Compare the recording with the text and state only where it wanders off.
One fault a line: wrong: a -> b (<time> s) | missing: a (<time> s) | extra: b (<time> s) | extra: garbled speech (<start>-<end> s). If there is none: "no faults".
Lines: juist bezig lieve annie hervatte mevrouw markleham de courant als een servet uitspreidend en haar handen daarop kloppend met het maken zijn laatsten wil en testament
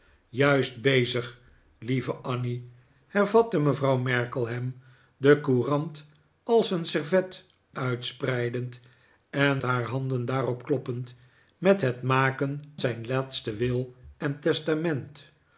no faults